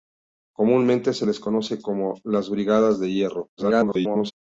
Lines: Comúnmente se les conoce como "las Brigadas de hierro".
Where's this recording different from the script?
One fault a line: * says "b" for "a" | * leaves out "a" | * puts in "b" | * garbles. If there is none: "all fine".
* garbles